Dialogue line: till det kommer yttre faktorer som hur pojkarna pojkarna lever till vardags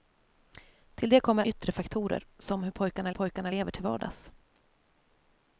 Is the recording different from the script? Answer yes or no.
no